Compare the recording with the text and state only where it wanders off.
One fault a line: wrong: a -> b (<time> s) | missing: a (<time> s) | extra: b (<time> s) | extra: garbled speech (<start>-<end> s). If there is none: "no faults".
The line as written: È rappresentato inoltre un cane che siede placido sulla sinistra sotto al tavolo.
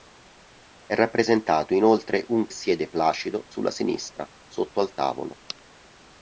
missing: cane che (2.5 s)